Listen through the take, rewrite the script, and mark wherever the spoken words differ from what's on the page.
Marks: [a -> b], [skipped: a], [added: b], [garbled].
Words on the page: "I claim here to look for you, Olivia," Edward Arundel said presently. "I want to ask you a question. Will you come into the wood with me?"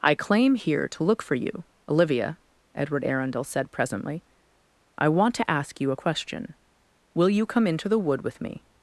"I claim here to look for you, Olivia," Edward Arundel said presently. "I want to ask you a question. Will you come into the wood with me?"